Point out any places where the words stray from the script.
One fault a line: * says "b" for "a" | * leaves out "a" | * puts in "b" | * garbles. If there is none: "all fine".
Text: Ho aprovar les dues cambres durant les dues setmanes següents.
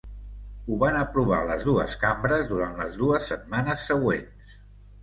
* puts in "van"